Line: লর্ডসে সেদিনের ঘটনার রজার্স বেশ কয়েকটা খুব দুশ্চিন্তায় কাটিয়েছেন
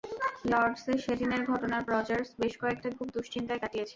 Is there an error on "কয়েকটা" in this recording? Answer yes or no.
no